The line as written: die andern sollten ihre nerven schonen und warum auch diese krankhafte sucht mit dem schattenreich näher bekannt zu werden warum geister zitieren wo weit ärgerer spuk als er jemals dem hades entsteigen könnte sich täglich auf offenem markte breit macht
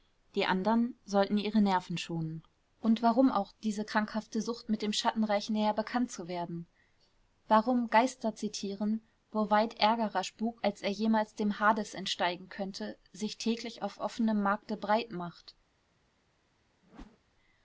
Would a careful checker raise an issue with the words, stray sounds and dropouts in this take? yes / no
yes